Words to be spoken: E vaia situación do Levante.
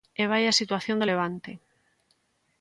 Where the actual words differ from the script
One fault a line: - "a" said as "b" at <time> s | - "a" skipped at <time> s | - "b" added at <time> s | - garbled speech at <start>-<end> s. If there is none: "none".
none